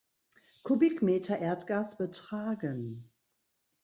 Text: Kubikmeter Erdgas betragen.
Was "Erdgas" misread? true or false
false